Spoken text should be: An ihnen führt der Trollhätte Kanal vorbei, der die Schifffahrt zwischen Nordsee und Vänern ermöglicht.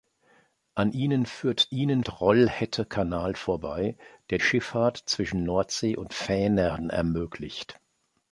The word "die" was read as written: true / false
false